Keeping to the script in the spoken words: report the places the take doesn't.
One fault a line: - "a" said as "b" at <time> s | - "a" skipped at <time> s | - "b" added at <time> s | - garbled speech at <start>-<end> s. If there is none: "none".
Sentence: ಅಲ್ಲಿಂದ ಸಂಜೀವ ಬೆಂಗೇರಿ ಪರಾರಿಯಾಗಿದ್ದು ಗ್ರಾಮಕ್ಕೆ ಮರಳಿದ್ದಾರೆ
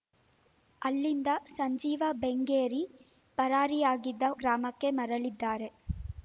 none